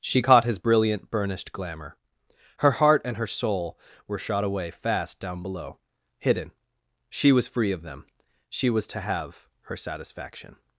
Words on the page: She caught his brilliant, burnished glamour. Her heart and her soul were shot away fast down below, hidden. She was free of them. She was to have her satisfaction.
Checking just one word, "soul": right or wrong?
right